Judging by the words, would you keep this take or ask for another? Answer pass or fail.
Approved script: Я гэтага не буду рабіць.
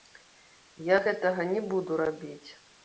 pass